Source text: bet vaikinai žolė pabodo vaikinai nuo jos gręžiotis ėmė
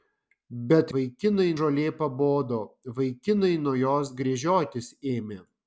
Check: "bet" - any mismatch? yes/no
no